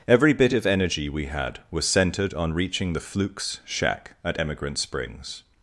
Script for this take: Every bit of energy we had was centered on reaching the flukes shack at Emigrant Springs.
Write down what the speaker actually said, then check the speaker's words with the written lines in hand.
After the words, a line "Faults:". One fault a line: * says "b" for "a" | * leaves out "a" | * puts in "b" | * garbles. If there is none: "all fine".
Every bit of energy we had was centered on reaching the flukes shack at Emigrant Springs.
Faults:
all fine